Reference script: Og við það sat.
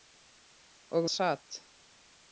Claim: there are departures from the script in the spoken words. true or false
true